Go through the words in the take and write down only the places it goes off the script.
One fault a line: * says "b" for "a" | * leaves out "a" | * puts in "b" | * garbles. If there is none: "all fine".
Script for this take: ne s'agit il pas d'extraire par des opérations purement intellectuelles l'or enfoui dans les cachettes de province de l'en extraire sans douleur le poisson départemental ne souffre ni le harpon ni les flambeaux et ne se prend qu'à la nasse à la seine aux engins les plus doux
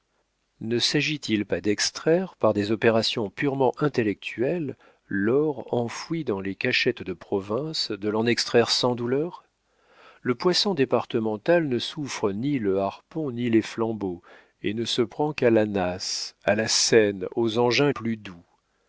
* leaves out "les"